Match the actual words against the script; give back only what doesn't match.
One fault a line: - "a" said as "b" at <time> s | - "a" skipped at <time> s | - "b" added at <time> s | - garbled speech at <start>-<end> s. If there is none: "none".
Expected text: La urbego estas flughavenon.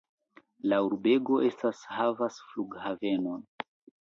- "havas" added at 2.0 s